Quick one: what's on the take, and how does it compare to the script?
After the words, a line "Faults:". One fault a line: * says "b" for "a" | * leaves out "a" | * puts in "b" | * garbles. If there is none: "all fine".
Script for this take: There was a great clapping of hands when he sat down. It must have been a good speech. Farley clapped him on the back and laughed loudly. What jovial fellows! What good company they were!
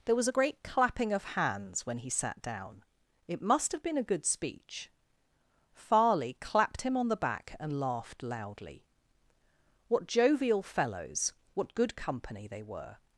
There was a great clapping of hands when he sat down. It must have been a good speech. Farley clapped him on the back and laughed loudly. What jovial fellows! What good company they were!
Faults:
all fine